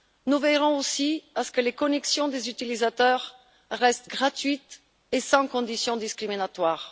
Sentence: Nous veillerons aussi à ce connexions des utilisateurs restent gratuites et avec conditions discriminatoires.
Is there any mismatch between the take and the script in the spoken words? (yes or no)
yes